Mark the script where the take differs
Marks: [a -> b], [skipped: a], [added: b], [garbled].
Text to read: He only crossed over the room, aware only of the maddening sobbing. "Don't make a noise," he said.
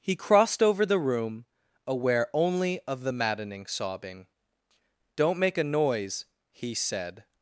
He [skipped: only] crossed over the room, aware only of the maddening sobbing. "Don't make a noise," he said.